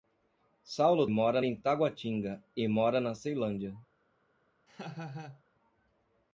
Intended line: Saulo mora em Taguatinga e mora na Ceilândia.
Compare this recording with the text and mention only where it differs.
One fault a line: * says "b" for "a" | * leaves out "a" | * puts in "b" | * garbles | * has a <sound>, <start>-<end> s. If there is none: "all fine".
* has a laugh, 4.7-5.4 s